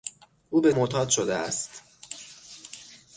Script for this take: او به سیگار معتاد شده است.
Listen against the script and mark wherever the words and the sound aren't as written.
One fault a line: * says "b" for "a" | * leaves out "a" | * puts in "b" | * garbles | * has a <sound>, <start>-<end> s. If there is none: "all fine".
* leaves out "سیگار"